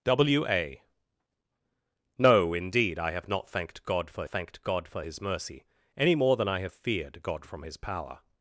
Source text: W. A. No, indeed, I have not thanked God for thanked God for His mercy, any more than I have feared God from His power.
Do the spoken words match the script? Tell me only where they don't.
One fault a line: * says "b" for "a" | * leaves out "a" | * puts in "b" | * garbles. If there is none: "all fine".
all fine